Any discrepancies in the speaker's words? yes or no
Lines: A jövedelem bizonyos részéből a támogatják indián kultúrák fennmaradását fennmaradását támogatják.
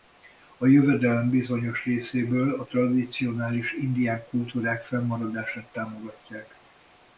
yes